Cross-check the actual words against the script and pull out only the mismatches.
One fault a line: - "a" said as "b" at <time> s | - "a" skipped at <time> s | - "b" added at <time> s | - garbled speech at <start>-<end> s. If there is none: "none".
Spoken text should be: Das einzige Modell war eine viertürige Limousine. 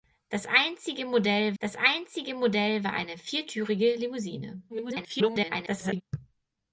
- "das einzige Modell" added at 1.6 s
- garbled speech at 4.7-6.0 s